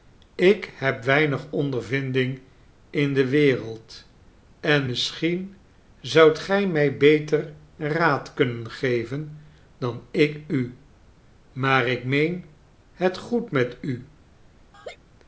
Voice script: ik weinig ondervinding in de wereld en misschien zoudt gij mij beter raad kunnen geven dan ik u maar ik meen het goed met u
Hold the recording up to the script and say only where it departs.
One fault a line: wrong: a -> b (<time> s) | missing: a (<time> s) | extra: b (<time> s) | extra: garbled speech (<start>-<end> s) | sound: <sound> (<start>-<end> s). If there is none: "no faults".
extra: heb (0.8 s)
sound: laugh (14.7-15.0 s)